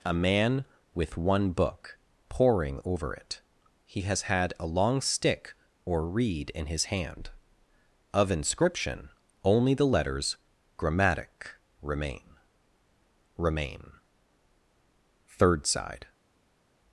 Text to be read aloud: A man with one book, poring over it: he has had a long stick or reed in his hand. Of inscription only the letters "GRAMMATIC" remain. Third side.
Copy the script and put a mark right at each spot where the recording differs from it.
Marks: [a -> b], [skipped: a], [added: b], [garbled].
A man with one book, poring over it: he has had a long stick or reed in his hand. Of inscription only the letters "GRAMMATIC" remain. [added: remain] Third side.